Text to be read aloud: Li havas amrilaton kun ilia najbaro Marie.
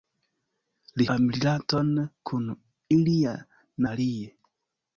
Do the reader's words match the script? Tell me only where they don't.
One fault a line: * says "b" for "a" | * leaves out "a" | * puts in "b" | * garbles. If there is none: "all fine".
* leaves out "havas"
* leaves out "najbaro"